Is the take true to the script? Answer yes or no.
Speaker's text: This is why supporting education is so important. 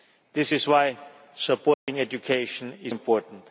no